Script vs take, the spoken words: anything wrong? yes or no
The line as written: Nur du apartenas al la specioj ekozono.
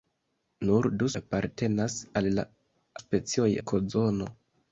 no